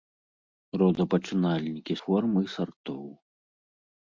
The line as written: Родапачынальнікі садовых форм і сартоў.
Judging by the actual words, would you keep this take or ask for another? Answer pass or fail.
fail